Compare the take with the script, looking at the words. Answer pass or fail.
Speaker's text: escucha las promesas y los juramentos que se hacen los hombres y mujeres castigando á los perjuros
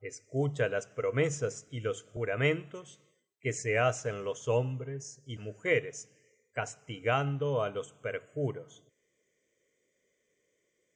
pass